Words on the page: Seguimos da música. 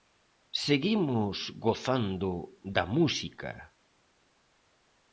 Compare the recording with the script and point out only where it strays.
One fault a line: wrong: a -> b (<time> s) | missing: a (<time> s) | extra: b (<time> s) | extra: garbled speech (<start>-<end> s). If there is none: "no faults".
extra: gozando (1.6 s)